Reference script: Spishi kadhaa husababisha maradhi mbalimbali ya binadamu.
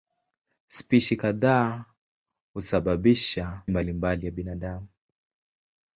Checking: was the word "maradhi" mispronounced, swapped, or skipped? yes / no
yes